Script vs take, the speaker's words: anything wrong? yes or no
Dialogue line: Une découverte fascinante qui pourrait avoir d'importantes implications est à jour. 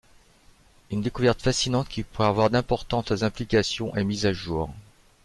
yes